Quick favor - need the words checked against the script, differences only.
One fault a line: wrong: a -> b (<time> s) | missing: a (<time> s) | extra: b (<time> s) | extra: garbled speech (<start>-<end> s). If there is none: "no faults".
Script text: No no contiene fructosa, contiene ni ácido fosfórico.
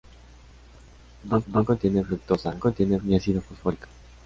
no faults